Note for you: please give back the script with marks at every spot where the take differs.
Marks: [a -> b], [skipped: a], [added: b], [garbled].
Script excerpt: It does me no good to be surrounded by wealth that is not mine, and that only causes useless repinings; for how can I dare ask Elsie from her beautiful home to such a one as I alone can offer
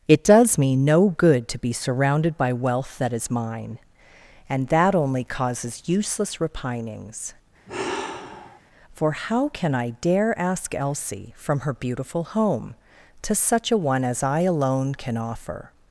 It does me no good to be surrounded by wealth that is [skipped: not] mine, and that only causes useless repinings; for how can I dare ask Elsie from her beautiful home to such a one as I alone can offer